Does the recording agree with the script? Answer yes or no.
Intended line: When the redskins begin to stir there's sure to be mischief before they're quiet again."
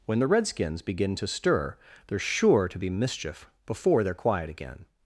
yes